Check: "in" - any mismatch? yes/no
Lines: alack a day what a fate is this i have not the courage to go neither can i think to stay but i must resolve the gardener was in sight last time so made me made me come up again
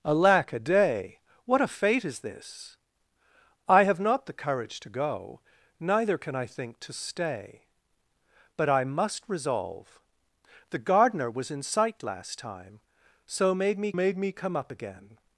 no